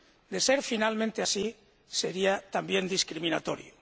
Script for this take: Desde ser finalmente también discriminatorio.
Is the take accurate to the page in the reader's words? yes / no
no